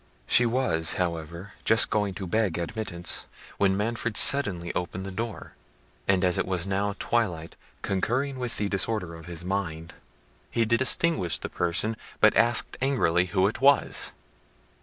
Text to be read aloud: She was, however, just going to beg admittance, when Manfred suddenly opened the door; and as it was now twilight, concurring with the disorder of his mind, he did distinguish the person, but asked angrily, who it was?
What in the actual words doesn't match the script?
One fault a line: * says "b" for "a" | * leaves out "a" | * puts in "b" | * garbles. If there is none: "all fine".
all fine